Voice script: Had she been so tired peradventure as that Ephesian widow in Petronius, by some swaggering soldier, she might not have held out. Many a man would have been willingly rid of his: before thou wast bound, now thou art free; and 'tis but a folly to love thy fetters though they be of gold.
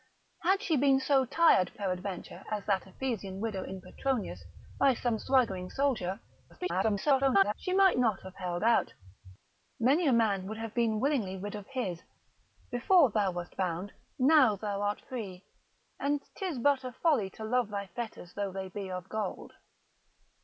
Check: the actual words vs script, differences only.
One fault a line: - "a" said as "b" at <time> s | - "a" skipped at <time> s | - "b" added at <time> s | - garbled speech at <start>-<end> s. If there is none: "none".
- garbled speech at 6.5-7.5 s